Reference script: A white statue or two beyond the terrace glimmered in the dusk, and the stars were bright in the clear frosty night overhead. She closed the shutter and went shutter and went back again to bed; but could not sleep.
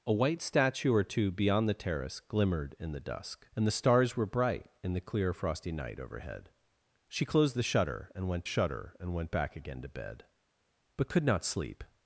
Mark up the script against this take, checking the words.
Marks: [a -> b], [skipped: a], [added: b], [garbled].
A white statue or two beyond the terrace glimmered in the dusk, and the stars were bright in the clear frosty night overhead. She closed the shutter and went shutter and went back again to bed; but could not sleep.